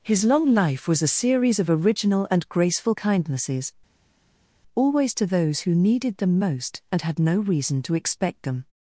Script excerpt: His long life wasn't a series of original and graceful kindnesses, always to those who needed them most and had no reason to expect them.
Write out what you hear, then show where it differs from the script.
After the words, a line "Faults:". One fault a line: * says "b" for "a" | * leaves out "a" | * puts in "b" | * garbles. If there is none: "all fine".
His long life was a series of original and graceful kindnesses, always to those who needed them most and had no reason to expect them.
Faults:
* says "was" for "wasn't"